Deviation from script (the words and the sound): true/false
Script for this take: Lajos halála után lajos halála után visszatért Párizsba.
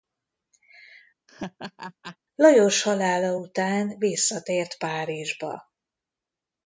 true